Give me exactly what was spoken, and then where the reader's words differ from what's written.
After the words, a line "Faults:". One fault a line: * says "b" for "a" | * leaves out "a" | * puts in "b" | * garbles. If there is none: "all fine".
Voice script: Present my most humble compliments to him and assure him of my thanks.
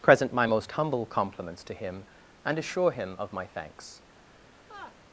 Present my most humble compliments to him and assure him of my thanks.
Faults:
all fine